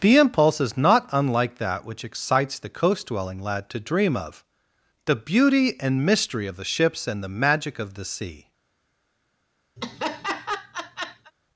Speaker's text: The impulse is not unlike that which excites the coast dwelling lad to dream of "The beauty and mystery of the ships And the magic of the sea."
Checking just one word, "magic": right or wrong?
right